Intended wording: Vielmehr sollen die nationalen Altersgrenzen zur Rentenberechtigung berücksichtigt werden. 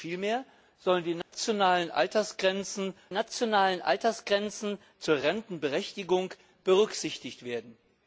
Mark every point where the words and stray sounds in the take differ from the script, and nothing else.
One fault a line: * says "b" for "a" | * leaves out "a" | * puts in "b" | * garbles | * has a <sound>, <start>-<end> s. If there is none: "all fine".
* has a dropout, 1.2-1.3 s
* puts in "nationalen Altersgrenzen"